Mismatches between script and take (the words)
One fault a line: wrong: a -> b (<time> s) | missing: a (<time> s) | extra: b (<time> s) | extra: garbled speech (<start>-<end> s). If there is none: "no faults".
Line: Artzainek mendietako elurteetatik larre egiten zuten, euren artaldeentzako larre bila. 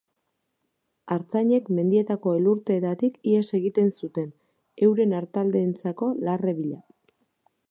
wrong: larre -> ihes (3.3 s)